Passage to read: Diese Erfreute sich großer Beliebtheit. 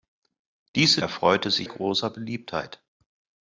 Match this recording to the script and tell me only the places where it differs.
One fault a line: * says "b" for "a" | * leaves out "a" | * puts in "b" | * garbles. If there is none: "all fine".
all fine